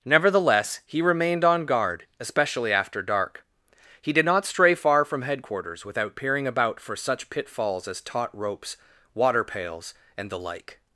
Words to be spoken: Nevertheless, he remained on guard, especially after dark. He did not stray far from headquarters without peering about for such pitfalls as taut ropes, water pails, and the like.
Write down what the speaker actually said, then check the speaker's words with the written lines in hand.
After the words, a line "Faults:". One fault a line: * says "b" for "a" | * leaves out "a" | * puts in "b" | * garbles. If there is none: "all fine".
Nevertheless, he remained on guard, especially after dark. He did not stray far from headquarters without peering about for such pitfalls as taut ropes, water pails, and the like.
Faults:
all fine